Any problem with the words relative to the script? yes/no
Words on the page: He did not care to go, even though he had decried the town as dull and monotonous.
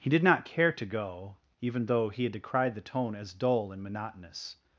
yes